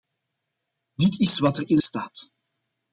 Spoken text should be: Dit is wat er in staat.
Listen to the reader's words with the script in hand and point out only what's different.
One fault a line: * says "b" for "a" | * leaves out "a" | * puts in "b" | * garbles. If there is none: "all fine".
all fine